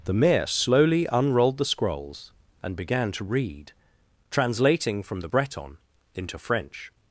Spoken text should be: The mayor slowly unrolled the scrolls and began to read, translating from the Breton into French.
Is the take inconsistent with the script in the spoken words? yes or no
no